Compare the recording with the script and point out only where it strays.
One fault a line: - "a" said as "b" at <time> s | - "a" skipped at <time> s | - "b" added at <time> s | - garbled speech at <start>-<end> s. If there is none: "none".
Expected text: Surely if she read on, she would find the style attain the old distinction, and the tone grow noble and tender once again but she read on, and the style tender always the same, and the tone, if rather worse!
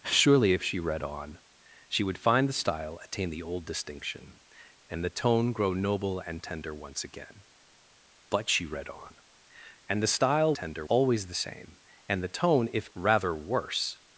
none